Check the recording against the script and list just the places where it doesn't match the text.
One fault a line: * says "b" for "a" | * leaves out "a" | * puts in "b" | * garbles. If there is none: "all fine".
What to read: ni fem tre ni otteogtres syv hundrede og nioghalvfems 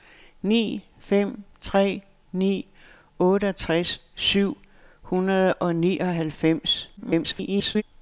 * garbles